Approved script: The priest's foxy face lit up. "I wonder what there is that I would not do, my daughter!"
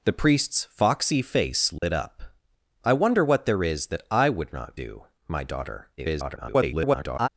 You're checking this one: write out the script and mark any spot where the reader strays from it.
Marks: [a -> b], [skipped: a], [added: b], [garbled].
The priest's foxy face lit up. "I wonder what there is that I would not do, my daughter!" [garbled]